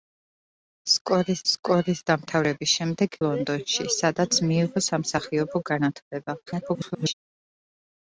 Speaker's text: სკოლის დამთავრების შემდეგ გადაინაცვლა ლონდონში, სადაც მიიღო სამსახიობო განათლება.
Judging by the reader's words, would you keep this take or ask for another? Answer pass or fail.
fail